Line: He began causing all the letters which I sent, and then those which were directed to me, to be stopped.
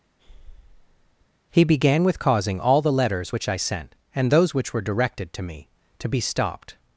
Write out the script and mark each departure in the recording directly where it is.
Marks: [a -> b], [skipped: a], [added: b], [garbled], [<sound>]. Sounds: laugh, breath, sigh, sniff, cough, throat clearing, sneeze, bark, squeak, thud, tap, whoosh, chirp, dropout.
[breath] He began [added: with] causing all the letters which I sent, and [skipped: then] those which were directed to me, to be stopped.